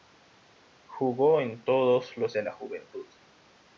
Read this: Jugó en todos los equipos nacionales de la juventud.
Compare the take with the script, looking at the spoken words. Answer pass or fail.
fail